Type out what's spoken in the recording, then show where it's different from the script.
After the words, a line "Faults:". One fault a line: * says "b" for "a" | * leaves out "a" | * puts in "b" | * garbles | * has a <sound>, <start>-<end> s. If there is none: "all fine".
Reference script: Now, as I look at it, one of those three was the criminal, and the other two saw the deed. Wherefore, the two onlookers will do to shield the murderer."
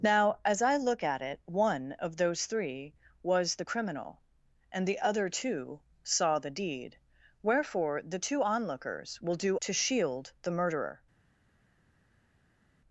Now, as I look at it, one of those three was the criminal, and the other two saw the deed. Wherefore, the two onlookers will do to shield the murderer."
Faults:
all fine